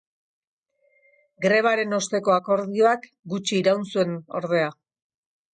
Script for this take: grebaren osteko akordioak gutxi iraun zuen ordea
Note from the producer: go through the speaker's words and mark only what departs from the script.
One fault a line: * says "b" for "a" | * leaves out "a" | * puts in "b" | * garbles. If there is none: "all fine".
all fine